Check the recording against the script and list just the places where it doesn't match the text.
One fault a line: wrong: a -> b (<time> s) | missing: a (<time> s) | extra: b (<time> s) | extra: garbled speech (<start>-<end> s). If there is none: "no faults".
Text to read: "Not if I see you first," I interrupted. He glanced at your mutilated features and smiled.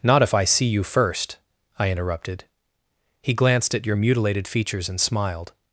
no faults